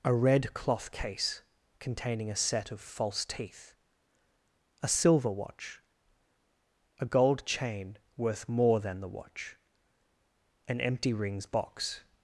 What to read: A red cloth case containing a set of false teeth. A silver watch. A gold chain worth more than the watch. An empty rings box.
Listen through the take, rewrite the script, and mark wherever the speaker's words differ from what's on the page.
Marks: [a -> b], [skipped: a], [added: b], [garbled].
A red cloth case containing a set of false teeth. A silver watch. A gold chain worth more than the watch. An empty rings box.